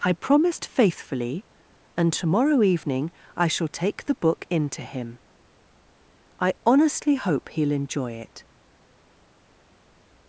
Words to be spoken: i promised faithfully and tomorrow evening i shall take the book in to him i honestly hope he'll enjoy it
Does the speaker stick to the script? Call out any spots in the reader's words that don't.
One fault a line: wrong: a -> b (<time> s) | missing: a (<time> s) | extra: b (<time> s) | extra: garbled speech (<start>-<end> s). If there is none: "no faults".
no faults